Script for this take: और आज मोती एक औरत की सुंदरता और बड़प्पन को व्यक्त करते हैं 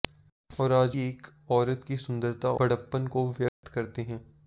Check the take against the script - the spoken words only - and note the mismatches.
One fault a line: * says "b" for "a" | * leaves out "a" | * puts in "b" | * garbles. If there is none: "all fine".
* leaves out "मोती"
* leaves out "और"